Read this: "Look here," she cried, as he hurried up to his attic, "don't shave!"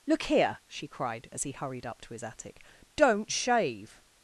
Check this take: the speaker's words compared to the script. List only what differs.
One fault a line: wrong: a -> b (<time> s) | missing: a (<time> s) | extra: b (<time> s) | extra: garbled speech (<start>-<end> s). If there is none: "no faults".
no faults